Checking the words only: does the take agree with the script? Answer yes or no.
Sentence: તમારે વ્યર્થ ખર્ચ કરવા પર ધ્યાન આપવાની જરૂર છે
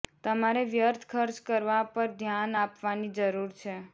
yes